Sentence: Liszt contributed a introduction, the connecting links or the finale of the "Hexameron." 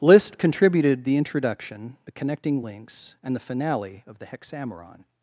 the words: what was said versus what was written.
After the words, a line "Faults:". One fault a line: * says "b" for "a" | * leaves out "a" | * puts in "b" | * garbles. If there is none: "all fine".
Liszt contributed the introduction, the connecting links and the finale of the "Hexameron."
Faults:
* says "the" for "a"
* says "and" for "or"